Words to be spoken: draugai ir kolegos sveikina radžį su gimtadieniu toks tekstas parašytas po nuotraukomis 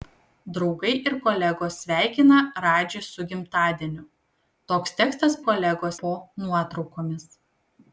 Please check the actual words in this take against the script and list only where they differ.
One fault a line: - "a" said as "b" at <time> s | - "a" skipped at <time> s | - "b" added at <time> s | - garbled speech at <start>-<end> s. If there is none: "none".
- "parašytas" said as "kolegos" at 5.5 s